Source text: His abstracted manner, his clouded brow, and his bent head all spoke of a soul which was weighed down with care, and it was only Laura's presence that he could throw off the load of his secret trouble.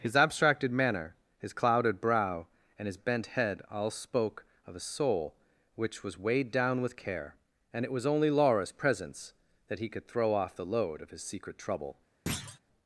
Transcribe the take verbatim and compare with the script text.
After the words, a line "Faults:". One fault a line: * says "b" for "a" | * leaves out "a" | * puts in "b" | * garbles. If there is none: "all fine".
His abstracted manner, his clouded brow, and his bent head all spoke of a soul which was weighed down with care, and it was only Laura's presence that he could throw off the load of his secret trouble.
Faults:
all fine